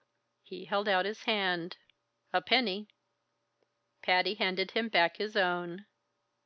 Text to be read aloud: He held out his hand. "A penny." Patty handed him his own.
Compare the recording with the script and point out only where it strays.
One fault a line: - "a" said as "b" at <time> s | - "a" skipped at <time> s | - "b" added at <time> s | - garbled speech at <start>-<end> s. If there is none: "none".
- "back" added at 4.9 s